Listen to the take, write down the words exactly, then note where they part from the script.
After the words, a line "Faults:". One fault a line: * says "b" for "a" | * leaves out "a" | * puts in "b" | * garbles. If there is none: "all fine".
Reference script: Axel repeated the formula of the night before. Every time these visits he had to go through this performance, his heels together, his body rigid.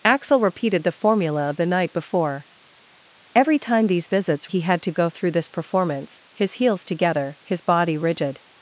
Axel repeated the formula of the night before. Every time these visits he had to go through this performance, his heels together, his body rigid.
Faults:
all fine